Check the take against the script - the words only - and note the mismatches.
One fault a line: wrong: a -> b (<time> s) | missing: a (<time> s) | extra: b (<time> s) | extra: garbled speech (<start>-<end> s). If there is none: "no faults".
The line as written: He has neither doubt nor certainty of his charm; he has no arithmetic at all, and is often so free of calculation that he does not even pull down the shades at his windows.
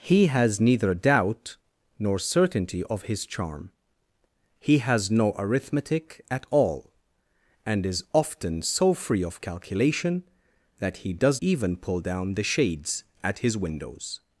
missing: not (11.4 s)